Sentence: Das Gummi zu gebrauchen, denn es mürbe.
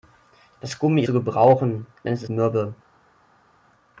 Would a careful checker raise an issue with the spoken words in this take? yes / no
no